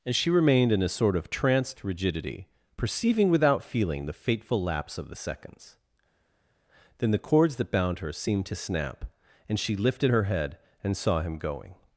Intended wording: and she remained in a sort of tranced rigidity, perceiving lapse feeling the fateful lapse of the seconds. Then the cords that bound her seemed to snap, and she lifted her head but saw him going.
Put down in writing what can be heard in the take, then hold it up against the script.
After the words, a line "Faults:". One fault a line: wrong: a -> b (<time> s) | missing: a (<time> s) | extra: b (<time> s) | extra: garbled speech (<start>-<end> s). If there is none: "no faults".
and she remained in a sort of tranced rigidity, perceiving without feeling the fateful lapse of the seconds. Then the cords that bound her seemed to snap, and she lifted her head and saw him going.
Faults:
wrong: lapse -> without (3.3 s)
wrong: but -> and (10.8 s)